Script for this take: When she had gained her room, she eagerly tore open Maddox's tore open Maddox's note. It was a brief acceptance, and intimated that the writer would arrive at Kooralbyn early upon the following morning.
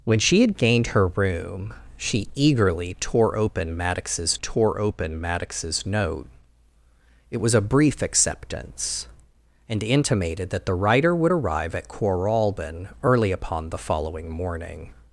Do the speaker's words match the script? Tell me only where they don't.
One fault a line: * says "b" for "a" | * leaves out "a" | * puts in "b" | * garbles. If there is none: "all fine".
all fine